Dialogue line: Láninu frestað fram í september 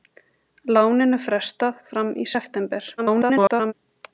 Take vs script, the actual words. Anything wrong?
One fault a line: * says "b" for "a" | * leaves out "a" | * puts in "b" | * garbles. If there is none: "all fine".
* garbles